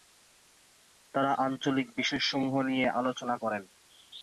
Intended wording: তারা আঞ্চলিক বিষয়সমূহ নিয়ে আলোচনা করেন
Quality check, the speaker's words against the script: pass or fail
pass